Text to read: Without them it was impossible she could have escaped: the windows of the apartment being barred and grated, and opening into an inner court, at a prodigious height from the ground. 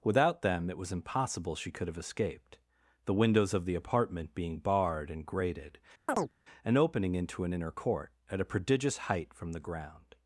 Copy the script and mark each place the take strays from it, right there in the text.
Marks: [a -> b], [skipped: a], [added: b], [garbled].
Without them it was impossible she could have escaped: the windows of the apartment being barred and grated, and opening into an inner court, at a prodigious height from the ground.